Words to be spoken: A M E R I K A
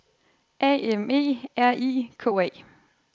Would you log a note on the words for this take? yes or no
no